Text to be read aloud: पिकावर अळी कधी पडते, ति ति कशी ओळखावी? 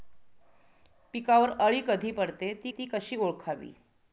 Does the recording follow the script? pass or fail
pass